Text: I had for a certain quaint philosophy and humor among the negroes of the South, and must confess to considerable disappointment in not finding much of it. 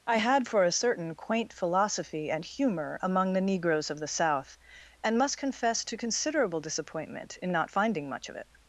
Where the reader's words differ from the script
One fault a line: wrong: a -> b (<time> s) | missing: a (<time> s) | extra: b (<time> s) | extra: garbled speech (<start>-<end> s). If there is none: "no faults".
no faults